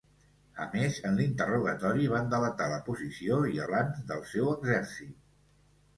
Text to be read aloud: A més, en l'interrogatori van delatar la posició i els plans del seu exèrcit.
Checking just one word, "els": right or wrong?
wrong